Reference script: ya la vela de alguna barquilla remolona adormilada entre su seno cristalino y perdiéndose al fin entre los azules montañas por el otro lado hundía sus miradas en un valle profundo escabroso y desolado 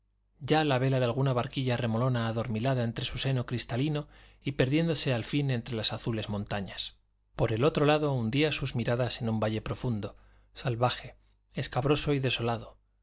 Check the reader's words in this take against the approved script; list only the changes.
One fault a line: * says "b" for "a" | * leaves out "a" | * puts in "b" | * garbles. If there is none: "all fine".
* says "las" for "los"
* puts in "salvaje"